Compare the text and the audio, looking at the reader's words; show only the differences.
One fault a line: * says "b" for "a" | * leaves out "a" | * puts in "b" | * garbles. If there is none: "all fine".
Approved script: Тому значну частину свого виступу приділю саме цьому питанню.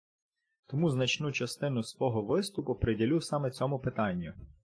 all fine